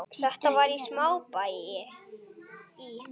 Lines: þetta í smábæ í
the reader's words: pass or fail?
fail